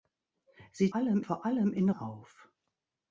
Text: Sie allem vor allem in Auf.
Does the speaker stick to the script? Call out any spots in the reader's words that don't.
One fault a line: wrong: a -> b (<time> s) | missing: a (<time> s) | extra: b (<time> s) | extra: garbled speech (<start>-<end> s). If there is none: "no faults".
no faults